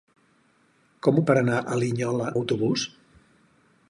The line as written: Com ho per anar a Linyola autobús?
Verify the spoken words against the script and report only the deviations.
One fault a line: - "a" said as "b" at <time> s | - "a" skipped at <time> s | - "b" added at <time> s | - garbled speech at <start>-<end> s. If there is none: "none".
none